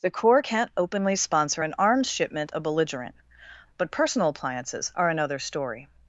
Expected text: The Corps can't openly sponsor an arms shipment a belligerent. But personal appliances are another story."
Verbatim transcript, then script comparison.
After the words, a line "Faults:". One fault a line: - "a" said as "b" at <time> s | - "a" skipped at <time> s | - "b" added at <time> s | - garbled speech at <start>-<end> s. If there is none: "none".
The Corps can't openly sponsor an arms shipment a belligerent. But personal appliances are another story."
Faults:
none